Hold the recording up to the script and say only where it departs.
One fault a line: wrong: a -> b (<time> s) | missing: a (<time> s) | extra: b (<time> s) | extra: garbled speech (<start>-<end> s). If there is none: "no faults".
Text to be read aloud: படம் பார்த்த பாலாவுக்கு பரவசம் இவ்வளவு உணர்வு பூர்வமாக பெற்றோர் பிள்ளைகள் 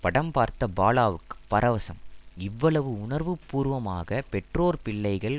no faults